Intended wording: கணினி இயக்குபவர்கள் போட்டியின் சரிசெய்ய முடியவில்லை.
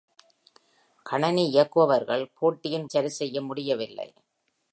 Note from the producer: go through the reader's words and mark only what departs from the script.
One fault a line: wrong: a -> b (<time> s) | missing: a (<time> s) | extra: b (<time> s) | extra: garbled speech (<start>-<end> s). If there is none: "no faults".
no faults